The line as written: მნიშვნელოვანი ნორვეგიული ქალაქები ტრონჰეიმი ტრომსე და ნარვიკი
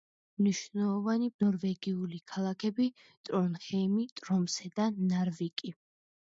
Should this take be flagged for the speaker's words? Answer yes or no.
no